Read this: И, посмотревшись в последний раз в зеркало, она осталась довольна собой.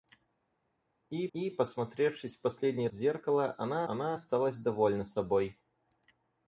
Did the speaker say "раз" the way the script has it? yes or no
no